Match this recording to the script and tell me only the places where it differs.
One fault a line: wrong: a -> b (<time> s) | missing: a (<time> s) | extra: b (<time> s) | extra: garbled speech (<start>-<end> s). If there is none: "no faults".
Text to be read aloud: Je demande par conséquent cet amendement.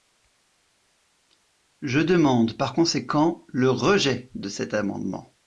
extra: le rejet de (3.5 s)